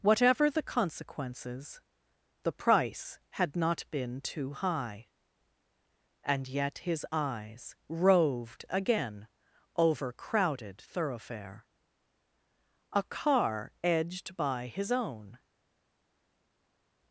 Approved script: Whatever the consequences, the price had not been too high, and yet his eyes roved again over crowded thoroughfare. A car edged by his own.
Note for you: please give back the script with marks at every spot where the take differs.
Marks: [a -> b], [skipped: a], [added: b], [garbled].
Whatever the consequences, the price had not been too high, and yet his eyes roved again over crowded thoroughfare. A car edged by his own.